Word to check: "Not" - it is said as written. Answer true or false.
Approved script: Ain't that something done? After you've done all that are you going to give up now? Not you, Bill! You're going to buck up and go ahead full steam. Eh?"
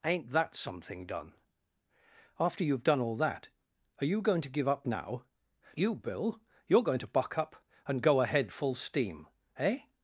false